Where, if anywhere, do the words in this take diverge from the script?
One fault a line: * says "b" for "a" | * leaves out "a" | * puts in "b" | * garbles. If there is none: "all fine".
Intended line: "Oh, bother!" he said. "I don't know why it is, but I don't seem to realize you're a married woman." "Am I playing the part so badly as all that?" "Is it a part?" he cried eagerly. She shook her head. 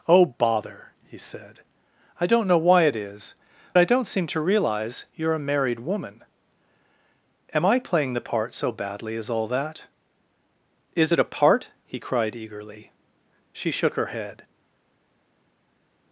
* leaves out "but"